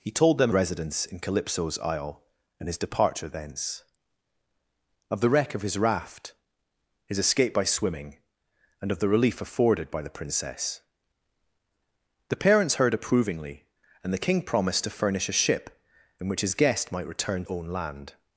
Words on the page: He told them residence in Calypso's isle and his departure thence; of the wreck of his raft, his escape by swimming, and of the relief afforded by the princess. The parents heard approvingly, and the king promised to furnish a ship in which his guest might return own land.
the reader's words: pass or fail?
pass